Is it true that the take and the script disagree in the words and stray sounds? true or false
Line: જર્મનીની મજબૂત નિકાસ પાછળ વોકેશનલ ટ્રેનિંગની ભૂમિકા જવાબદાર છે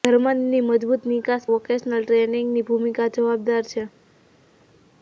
true